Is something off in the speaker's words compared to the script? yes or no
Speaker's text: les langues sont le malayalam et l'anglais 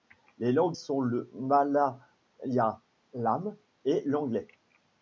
no